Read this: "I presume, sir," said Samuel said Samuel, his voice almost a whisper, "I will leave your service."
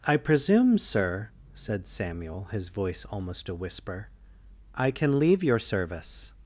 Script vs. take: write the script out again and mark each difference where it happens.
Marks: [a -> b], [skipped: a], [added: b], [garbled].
"I presume, sir," said Samuel [skipped: said Samuel,] his voice almost a whisper, "I [will -> can] leave your service."